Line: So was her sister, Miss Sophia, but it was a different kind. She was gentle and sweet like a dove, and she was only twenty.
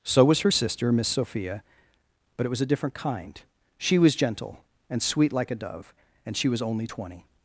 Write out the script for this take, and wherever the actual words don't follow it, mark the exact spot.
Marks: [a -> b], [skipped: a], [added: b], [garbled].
So was her sister, Miss Sophia, but it was a different kind. She was gentle and sweet like a dove, and she was only twenty.